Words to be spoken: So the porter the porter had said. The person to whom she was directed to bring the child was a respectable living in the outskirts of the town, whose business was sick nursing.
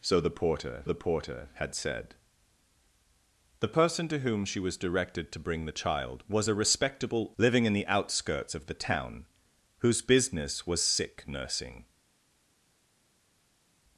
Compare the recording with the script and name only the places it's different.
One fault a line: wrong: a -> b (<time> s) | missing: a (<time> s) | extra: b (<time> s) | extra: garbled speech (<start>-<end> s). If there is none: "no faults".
no faults